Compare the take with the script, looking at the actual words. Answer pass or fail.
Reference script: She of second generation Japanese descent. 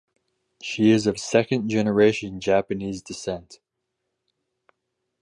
fail